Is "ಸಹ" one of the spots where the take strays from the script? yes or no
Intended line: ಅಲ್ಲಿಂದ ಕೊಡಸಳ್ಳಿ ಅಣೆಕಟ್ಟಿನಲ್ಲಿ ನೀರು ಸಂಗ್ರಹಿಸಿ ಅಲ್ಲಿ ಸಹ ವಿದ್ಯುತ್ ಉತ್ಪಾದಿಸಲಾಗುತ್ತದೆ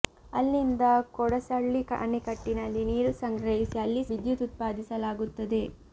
yes